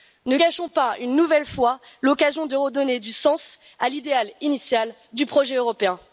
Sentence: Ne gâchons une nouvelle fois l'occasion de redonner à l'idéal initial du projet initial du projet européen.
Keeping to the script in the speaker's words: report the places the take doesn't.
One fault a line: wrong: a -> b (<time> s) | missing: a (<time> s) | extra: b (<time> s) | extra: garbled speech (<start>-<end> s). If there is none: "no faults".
extra: pas (0.7 s)
extra: du sens (3.0 s)
missing: initial du projet (5.5 s)